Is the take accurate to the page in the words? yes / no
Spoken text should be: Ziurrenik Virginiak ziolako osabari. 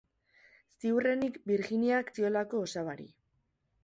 yes